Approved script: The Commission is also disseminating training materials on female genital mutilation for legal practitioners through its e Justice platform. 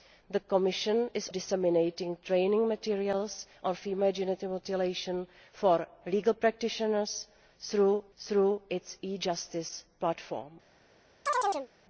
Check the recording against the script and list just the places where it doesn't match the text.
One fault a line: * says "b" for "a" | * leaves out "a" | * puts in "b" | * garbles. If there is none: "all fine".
* leaves out "also"
* puts in "through"